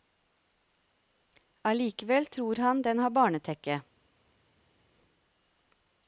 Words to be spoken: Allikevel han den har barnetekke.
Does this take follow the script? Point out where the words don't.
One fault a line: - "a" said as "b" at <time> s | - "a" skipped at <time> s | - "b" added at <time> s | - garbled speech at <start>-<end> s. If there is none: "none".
- "tror" added at 2.2 s